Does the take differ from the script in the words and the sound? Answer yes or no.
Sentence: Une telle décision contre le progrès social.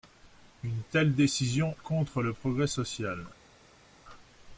no